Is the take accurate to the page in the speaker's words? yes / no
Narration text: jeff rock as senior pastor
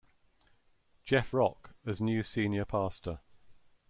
no